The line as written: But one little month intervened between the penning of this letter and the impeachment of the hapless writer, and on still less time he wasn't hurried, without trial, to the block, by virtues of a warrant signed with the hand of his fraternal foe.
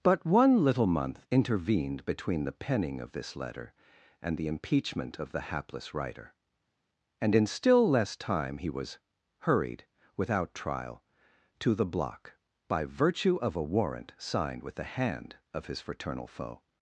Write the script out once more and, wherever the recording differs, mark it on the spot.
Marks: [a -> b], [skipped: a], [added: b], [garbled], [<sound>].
But one little month intervened between the penning of this letter and the impeachment of the hapless writer, and [on -> in] still less time he [wasn't -> was] hurried, without trial, to the block, by [virtues -> virtue] of a warrant signed with the hand of his fraternal foe.